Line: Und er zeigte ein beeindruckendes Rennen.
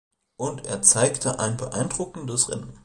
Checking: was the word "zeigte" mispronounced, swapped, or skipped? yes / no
no